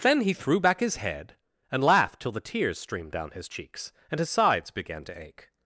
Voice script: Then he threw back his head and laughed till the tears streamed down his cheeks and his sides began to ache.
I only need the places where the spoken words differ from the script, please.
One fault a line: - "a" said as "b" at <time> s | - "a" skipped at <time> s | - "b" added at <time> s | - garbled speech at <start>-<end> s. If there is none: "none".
none